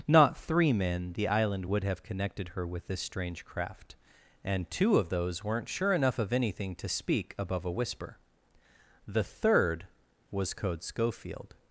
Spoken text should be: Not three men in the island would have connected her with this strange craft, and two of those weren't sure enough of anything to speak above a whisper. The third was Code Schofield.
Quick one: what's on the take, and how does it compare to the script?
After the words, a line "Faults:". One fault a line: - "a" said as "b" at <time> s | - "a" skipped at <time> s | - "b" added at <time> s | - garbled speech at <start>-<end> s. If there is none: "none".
Not three men the island would have connected her with this strange craft, and two of those weren't sure enough of anything to speak above a whisper. The third was Code Schofield.
Faults:
- "in" skipped at 1.1 s